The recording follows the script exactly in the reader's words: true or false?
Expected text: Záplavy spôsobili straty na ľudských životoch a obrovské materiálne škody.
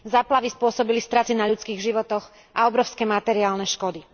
true